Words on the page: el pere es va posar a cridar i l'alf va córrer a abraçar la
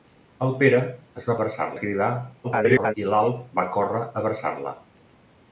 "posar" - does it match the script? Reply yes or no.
no